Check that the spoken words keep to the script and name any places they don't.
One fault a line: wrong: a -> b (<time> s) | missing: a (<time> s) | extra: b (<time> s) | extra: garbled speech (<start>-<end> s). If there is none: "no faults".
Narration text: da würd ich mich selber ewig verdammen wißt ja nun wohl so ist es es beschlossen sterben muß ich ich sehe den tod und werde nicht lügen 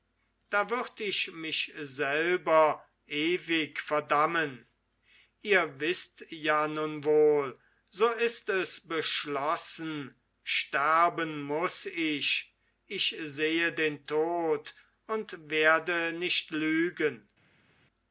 extra: ihr (5.4 s)
missing: es (8.8 s)